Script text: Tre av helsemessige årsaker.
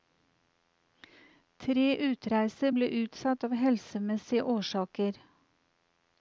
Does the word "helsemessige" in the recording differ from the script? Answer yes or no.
no